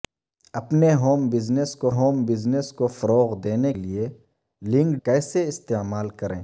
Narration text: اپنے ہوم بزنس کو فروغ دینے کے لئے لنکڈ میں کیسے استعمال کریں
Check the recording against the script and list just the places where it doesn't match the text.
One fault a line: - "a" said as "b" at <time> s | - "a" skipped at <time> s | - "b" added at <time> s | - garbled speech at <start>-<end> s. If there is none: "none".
- "ہوم بزنس کو" added at 1.9 s
- "کے" skipped at 3.7 s
- "میں" skipped at 5.0 s